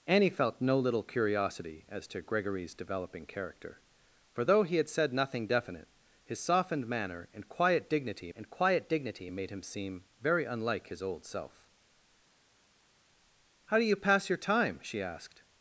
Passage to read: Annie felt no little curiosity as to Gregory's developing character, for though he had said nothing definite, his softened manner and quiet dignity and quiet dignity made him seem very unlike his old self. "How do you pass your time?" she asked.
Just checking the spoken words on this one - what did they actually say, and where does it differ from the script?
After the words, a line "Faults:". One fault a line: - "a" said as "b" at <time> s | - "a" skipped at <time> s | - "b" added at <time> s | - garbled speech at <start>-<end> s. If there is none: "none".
Annie felt no little curiosity as to Gregory's developing character, for though he had said nothing definite, his softened manner and quiet dignity and quiet dignity made him seem very unlike his old self. "How do you pass your time?" she asked.
Faults:
none